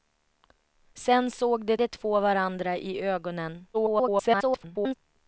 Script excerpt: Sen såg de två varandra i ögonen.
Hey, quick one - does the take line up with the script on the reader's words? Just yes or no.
no